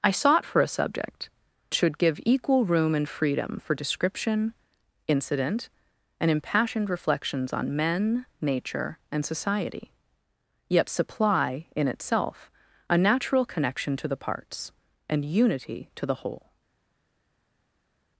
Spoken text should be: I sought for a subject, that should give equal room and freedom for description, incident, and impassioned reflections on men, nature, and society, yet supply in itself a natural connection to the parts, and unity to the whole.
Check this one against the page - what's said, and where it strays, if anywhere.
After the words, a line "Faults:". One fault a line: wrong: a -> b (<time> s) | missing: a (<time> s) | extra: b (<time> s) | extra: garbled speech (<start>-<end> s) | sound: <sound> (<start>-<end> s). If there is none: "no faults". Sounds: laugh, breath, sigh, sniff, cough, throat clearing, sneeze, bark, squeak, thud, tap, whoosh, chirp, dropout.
I sought for a subject, should give equal room and freedom for description, incident, and impassioned reflections on men, nature, and society, yet supply in itself a natural connection to the parts, and unity to the whole.
Faults:
missing: that (1.3 s)